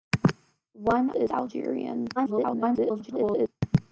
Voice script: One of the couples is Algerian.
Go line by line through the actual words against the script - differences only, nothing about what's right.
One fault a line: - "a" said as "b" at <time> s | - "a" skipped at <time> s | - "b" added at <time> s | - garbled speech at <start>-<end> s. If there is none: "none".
- "of the couples" skipped at 1.1 s
- garbled speech at 2.2-3.5 s